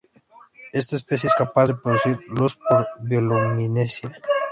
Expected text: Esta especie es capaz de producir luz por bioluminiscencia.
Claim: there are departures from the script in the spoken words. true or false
false